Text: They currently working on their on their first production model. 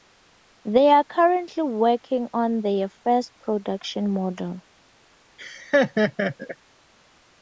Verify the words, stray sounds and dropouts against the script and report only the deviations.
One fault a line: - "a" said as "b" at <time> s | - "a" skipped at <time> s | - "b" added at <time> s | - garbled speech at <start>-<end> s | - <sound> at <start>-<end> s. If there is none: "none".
- "are" added at 0.9 s
- "on their" skipped at 2.9 s
- laugh at 5.4-6.6 s